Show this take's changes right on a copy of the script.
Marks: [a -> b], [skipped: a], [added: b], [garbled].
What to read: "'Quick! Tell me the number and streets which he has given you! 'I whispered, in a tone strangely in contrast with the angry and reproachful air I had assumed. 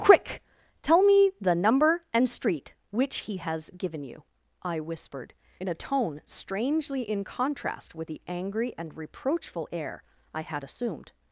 "'Quick! Tell me the number and [streets -> street] which he has given you! 'I whispered, in a tone strangely in contrast with the angry and reproachful air I had assumed.